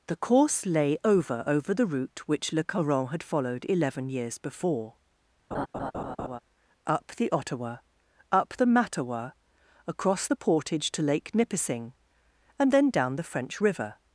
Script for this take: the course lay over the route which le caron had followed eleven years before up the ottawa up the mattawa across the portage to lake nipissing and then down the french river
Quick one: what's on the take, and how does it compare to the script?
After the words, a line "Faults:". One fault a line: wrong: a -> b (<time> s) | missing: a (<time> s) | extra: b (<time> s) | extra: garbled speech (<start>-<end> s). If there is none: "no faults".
the course lay over over the route which le caron had followed eleven years before up the ottawa up the mattawa across the portage to lake nipissing and then down the french river
Faults:
extra: over (1.4 s)